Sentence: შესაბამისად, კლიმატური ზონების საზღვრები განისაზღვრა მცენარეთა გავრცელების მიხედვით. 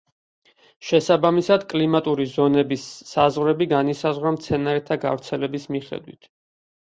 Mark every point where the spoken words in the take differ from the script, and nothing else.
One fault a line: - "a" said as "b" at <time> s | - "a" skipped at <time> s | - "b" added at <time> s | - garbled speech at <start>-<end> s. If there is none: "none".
none